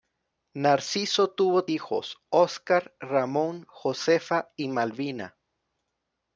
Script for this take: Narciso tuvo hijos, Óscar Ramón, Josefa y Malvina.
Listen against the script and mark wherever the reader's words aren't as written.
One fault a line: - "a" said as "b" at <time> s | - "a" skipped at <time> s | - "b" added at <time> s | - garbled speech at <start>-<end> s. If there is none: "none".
none